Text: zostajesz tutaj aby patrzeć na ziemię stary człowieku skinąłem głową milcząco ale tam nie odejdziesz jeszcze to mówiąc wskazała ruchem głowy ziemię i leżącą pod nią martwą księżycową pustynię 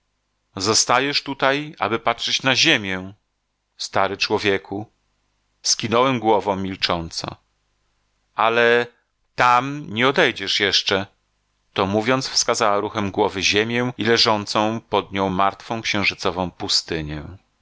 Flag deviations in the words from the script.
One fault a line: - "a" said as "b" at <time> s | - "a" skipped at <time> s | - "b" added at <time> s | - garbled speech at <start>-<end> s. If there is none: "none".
none